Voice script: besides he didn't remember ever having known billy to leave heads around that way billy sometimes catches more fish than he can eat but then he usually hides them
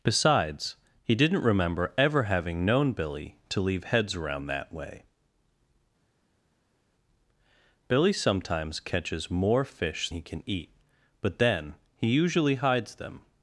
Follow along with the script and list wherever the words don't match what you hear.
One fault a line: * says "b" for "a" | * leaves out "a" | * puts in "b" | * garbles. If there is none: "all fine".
* leaves out "than"